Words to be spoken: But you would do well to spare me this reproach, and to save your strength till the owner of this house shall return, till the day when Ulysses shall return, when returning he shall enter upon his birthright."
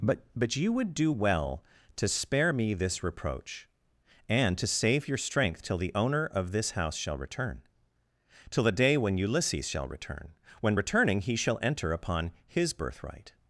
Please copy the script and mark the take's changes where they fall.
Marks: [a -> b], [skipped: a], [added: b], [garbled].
But [added: but] you would do well to spare me this reproach, and to save your strength till the owner of this house shall return, till the day when Ulysses shall return, when returning he shall enter upon his birthright."